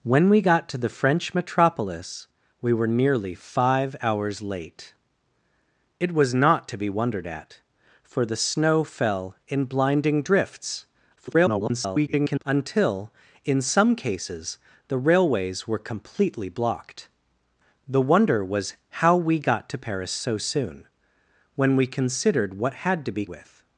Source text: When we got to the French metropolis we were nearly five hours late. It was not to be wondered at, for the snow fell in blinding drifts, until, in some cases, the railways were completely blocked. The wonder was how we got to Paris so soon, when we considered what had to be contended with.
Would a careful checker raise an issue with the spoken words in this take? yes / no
yes